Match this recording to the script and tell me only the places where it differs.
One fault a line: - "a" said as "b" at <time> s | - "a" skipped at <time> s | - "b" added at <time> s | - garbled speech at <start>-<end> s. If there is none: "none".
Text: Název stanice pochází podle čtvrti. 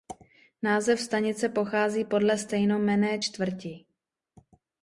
- "stejnojmenné" added at 2.4 s